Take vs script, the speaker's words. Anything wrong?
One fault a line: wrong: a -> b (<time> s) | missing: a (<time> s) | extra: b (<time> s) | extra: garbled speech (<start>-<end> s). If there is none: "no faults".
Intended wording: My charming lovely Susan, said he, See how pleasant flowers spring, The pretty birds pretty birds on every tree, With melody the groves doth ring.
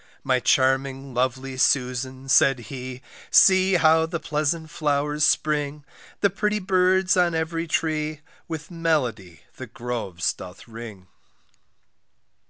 extra: the (4.0 s)
missing: pretty birds (7.2 s)